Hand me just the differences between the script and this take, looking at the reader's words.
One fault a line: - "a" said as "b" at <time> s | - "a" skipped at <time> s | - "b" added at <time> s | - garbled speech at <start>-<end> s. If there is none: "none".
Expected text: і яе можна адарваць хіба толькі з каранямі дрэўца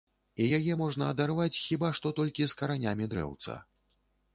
- "што" added at 2.0 s